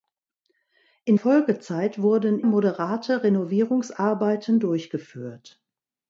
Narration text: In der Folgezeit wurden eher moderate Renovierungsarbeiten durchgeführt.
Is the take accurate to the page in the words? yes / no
no